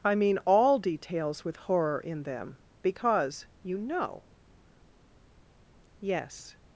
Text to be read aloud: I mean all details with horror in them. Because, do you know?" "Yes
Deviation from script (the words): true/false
true